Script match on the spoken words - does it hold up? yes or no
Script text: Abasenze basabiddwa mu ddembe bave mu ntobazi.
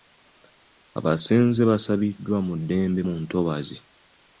no